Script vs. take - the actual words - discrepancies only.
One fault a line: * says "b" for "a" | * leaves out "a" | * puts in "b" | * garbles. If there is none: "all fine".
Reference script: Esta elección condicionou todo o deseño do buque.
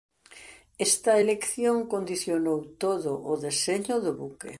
all fine